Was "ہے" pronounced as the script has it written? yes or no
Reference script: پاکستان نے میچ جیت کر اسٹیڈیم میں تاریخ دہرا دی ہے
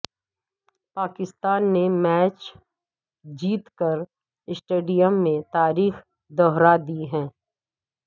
yes